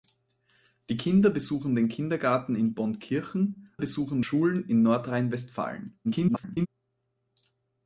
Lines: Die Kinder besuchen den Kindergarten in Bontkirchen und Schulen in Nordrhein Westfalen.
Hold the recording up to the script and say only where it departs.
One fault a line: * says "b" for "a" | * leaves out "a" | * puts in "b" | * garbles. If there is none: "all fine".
* says "besuchen" for "und"
* garbles